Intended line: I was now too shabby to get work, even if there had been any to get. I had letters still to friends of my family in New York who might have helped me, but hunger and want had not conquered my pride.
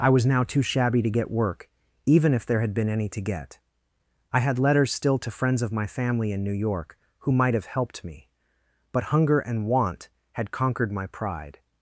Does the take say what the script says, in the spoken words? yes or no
no